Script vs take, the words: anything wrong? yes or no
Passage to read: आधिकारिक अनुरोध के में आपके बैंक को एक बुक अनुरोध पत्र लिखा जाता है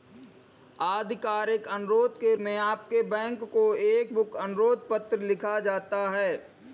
no